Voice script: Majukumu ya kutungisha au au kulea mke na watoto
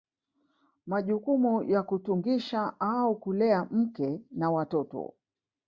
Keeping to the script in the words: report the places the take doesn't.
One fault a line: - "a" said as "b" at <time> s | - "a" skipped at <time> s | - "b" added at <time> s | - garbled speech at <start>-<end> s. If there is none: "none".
- "au" skipped at 3.2 s